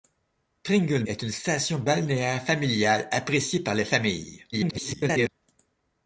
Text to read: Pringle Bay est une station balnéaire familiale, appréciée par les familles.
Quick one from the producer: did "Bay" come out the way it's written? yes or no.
no